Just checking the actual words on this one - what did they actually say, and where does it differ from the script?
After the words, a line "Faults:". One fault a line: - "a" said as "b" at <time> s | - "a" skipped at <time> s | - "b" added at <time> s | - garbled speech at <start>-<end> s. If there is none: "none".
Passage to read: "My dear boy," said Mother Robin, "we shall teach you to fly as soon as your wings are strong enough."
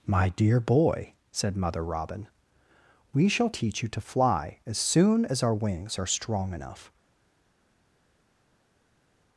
"My dear boy," said Mother Robin, "we shall teach you to fly as soon as our wings are strong enough."
Faults:
- "your" said as "our" at 5.4 s